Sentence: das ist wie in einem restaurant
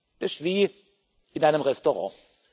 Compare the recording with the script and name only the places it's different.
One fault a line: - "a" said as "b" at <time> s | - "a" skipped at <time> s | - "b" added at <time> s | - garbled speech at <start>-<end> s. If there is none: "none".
none